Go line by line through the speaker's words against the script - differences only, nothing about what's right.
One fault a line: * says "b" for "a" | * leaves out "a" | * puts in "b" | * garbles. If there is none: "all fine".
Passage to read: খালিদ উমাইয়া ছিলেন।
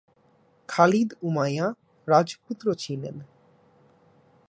* puts in "রাজপুত্র"